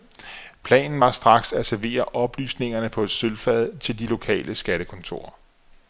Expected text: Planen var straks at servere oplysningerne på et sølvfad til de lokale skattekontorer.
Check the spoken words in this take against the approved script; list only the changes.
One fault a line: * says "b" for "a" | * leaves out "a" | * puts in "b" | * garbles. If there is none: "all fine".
all fine